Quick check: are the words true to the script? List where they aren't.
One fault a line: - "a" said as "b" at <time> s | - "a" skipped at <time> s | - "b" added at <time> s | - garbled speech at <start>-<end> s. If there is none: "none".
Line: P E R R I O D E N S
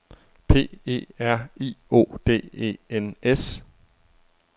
- "R" skipped at 1.5 s